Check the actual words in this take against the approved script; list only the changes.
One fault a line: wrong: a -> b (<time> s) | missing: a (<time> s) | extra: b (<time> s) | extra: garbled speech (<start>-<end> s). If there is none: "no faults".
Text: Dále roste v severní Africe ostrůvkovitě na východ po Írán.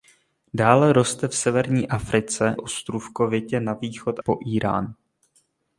no faults